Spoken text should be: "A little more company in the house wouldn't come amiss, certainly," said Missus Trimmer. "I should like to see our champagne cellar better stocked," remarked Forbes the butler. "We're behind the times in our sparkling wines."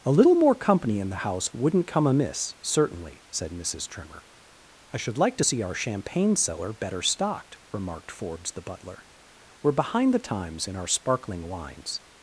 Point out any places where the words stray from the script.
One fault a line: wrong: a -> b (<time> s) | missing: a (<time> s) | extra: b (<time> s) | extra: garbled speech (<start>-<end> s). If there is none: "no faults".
no faults